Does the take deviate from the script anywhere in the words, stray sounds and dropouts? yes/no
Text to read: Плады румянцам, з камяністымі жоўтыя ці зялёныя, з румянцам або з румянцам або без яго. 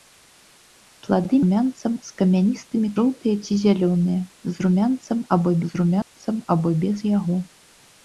yes